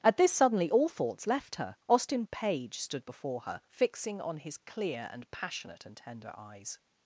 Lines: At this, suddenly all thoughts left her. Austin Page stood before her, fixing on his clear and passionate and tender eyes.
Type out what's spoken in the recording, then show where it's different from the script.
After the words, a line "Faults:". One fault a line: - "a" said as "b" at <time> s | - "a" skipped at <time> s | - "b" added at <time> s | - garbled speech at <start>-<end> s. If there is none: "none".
At this, suddenly all thoughts left her. Austin Page stood before her, fixing on his clear and passionate and tender eyes.
Faults:
none